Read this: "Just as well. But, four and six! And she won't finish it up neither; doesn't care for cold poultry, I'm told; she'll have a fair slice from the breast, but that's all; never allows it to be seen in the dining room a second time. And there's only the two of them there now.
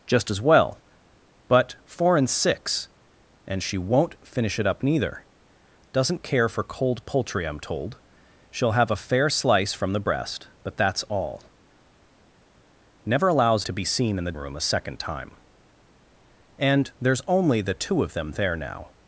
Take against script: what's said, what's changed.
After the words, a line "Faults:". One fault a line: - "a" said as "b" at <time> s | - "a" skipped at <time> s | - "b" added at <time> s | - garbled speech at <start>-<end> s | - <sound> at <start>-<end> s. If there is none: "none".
"Just as well. But, four and six! And she won't finish it up neither; doesn't care for cold poultry, I'm told; she'll have a fair slice from the breast, but that's all; never allows to be seen in the room a second time. And there's only the two of them there now.
Faults:
- "it" skipped at 13.6 s
- "dining" skipped at 14.3 s